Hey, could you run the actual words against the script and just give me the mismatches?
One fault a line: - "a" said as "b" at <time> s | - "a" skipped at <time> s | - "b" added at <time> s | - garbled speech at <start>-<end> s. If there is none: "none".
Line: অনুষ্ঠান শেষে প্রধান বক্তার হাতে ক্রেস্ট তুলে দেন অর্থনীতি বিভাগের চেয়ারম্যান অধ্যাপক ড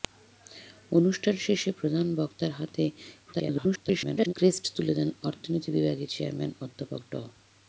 - garbled speech at 3.3-4.3 s